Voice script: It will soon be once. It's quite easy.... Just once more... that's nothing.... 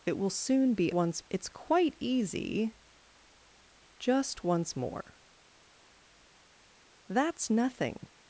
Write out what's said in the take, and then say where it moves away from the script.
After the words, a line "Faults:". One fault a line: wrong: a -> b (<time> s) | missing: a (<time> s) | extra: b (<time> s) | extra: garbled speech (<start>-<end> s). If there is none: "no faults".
It will soon be once. It's quite easy.... Just once more... that's nothing....
Faults:
no faults